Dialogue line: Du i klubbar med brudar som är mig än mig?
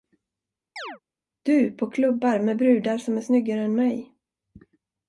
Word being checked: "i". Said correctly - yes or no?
no